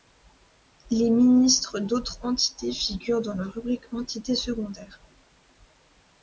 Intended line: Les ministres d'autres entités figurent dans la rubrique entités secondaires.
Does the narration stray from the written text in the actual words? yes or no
no